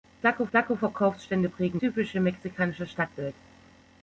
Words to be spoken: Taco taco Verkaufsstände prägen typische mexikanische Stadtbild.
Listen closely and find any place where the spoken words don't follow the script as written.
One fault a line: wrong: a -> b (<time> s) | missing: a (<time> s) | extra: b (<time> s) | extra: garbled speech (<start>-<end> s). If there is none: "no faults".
no faults